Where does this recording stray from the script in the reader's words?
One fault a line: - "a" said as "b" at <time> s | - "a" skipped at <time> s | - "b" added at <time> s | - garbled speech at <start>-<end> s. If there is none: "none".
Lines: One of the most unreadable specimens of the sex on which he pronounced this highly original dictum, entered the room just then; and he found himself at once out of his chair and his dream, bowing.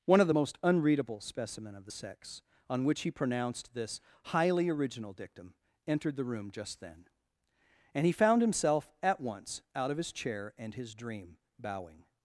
- "specimens" said as "specimen" at 1.2 s